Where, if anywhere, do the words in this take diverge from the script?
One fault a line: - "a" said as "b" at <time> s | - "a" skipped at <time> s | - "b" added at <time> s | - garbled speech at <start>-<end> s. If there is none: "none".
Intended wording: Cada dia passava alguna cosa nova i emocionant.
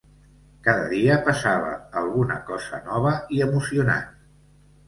none